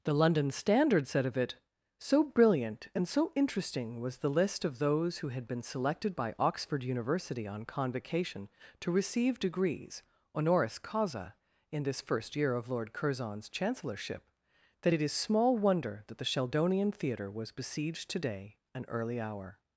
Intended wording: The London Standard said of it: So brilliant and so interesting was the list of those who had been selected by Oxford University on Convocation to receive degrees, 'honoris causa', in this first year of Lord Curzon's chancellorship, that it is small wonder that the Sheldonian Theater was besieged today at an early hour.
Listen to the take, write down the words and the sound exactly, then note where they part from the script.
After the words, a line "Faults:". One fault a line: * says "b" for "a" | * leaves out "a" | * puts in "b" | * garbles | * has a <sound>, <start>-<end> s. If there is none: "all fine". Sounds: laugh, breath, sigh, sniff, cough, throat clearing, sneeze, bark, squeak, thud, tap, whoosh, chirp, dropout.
The London Standard said of it: So brilliant and so interesting was the list of those who had been selected by Oxford University on Convocation to receive degrees, 'honoris causa', in this first year of Lord Curzon's chancellorship, that it is small wonder that the Sheldonian Theater was besieged today an early hour.
Faults:
* leaves out "at"